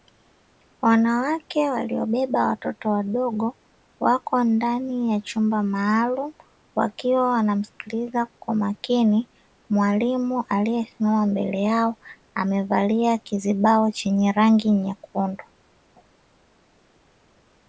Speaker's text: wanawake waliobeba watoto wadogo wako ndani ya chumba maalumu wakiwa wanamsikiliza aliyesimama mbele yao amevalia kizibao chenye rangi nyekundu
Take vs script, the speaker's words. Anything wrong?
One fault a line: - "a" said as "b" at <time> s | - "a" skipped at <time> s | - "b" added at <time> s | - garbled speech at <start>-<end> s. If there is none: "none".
- "kwa makini mwalimu" added at 8.4 s